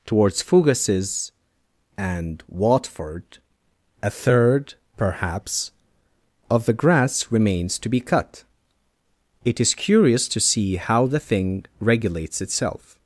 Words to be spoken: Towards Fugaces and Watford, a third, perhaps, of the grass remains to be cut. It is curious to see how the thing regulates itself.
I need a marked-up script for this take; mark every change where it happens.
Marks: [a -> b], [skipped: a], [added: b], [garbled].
Towards Fugaces and Watford, a third, perhaps, of the grass remains to be cut. It is curious to see how the thing regulates itself.